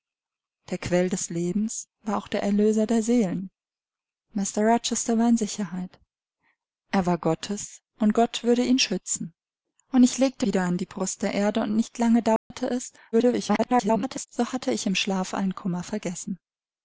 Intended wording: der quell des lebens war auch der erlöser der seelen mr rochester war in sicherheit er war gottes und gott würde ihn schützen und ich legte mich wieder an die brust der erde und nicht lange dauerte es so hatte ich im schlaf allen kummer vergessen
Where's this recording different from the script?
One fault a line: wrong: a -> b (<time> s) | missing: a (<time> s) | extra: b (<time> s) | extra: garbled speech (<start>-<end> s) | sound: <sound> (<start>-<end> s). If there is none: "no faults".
missing: mich (10.5 s)
sound: dropout (12.4-12.5 s)
extra: garbled speech (13.1-14.3 s)